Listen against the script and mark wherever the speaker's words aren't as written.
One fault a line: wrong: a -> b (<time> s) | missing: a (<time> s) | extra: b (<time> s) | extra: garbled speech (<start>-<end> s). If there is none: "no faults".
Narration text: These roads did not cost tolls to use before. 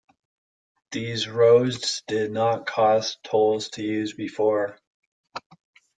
no faults